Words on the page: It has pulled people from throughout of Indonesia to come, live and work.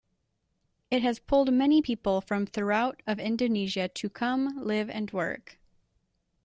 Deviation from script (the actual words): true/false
true